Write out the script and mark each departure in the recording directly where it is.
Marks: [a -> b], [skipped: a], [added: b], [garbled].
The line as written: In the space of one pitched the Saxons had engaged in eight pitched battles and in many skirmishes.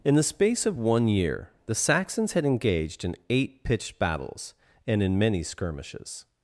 In the space of one [pitched -> year] the Saxons had engaged in eight pitched battles and in many skirmishes.